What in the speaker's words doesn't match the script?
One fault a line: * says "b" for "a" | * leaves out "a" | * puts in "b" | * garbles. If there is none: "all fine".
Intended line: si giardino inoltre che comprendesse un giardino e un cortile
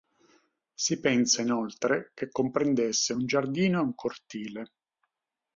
* says "pensa" for "giardino"